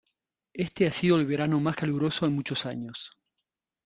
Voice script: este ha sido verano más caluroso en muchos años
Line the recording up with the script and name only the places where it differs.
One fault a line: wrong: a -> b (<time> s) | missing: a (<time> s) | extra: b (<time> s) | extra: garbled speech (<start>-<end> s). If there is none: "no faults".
extra: el (1.2 s)